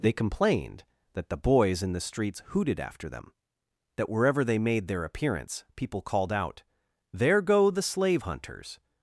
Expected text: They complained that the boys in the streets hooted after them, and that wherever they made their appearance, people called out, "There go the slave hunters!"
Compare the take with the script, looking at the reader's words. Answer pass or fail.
fail